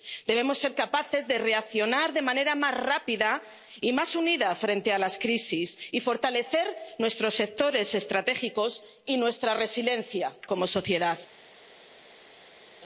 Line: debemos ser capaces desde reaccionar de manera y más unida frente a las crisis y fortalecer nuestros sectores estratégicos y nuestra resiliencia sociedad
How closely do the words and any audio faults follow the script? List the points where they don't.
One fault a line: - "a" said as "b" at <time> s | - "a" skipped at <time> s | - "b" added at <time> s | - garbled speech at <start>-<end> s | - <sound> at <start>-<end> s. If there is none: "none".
- "desde" said as "de" at 1.3 s
- "más rápida" added at 2.5 s
- "como" added at 10.5 s